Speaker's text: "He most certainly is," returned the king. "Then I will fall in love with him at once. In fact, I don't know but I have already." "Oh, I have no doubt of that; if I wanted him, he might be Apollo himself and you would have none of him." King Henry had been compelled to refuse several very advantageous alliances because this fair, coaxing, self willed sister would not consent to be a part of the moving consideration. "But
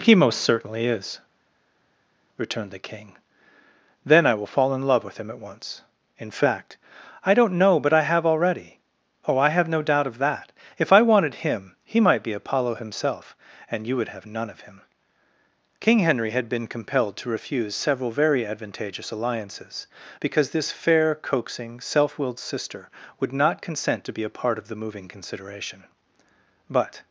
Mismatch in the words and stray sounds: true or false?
false